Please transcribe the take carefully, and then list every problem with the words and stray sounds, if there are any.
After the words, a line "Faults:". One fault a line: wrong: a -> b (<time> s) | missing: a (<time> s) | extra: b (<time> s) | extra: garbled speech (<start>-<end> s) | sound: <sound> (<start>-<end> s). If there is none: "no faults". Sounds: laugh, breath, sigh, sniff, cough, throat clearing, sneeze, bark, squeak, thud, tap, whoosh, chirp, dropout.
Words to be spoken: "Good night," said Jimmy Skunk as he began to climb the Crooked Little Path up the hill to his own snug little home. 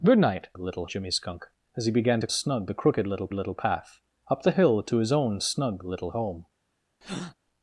"Good night," little Jimmy Skunk as he began to snug the Crooked Little Little Path up the hill to his own snug little home.
Faults:
wrong: said -> little (0.6 s)
wrong: climb -> snug (2.3 s)
extra: Little (3.3 s)
sound: breath (7.0-7.3 s)